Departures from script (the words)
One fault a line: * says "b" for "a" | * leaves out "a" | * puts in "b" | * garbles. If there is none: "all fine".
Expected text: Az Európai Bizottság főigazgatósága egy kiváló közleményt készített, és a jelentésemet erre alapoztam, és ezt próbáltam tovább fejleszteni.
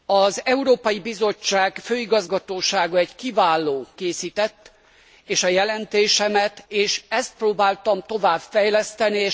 * leaves out "közleményt"
* leaves out "erre alapoztam"